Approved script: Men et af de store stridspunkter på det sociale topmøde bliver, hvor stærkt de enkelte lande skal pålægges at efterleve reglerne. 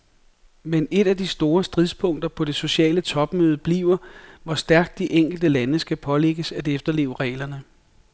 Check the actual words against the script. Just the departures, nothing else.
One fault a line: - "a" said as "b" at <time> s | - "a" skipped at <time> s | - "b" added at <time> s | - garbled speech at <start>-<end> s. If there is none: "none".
none